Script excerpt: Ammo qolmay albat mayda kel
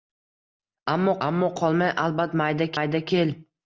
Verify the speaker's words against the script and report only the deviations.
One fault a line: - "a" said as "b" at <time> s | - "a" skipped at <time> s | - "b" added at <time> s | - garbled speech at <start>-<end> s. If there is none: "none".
- "ammo" added at 1.3 s
- "mayda" added at 2.8 s